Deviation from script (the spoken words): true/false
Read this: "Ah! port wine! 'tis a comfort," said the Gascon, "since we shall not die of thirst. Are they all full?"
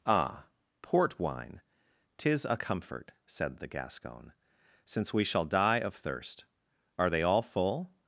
true